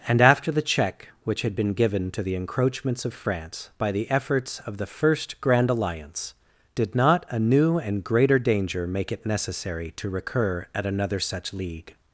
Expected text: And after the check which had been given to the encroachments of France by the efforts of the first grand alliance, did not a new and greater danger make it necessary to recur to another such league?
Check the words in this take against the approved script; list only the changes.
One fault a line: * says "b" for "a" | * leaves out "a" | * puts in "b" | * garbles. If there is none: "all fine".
* says "at" for "to"